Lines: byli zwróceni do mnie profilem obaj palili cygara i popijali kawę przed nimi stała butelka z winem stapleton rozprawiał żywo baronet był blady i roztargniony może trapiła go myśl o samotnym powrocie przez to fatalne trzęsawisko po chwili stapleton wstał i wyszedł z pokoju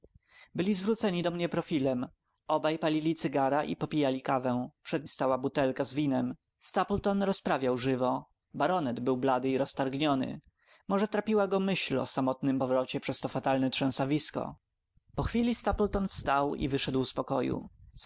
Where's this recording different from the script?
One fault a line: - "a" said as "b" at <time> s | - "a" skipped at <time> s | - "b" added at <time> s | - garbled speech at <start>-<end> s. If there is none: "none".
- "nimi" skipped at 5.1 s